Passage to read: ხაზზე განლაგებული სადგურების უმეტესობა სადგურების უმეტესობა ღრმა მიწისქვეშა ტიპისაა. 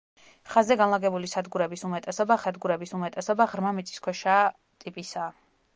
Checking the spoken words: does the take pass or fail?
pass